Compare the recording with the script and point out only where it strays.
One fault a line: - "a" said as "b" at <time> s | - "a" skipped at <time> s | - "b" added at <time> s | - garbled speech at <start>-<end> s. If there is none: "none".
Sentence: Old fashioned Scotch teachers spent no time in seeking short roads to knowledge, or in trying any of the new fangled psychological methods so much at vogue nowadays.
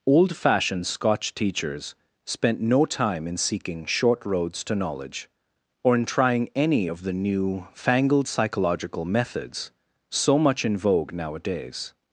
- "at" said as "in" at 10.6 s